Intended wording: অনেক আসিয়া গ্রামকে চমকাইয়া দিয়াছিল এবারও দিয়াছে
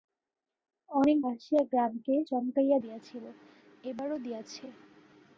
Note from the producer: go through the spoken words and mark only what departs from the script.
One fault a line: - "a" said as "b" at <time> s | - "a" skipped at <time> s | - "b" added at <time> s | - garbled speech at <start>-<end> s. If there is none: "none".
none